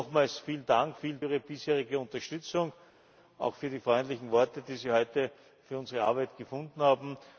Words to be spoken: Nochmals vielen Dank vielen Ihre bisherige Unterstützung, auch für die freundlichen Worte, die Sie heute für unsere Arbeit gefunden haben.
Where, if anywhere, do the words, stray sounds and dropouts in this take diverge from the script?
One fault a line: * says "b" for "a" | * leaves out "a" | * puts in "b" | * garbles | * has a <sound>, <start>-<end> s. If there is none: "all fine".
all fine